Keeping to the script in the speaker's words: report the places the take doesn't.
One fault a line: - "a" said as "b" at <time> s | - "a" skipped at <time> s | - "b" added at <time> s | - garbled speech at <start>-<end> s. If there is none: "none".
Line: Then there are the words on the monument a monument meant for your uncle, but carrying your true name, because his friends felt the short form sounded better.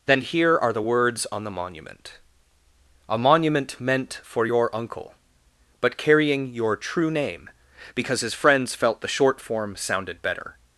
- "there" said as "here" at 0.2 s